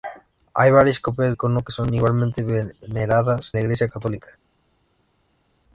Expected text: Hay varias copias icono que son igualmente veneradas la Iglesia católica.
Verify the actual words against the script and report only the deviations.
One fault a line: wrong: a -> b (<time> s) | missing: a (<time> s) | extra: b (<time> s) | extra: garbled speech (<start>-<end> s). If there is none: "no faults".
no faults